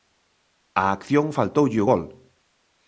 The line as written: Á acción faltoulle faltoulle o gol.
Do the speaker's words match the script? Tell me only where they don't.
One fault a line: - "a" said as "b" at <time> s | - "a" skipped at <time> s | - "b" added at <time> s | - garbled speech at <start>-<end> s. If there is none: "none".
- "faltoulle" skipped at 1.8 s